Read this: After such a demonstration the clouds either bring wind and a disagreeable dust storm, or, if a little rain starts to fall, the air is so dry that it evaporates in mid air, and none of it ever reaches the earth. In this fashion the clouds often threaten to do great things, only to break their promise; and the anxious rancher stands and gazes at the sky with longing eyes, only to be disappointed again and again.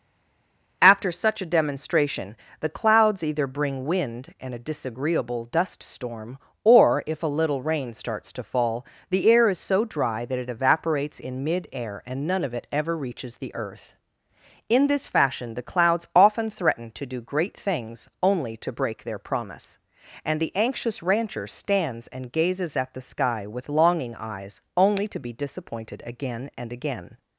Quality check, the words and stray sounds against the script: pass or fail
pass